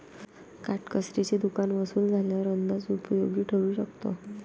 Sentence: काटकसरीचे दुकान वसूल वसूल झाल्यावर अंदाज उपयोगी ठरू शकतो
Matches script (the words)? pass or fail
fail